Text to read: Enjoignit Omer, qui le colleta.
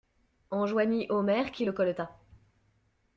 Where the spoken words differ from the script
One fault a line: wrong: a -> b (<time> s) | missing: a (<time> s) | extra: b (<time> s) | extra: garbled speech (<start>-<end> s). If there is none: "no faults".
no faults